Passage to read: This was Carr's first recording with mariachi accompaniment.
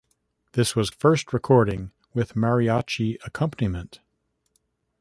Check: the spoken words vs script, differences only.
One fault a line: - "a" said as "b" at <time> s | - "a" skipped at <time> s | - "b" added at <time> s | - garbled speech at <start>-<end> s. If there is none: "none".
- "Carr's" skipped at 0.9 s